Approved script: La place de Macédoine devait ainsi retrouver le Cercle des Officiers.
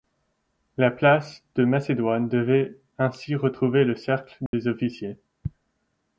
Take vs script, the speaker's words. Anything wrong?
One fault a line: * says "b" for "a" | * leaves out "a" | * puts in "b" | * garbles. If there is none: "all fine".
all fine